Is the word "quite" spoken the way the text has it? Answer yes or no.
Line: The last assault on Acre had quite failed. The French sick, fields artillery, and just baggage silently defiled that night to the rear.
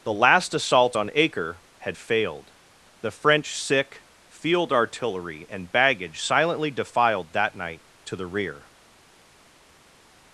no